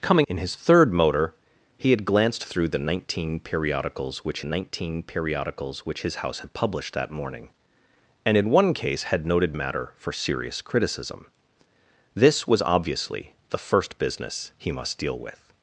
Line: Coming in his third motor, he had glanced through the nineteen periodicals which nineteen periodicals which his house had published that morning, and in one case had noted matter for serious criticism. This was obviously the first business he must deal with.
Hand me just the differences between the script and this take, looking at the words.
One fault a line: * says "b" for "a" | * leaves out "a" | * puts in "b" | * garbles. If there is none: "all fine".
all fine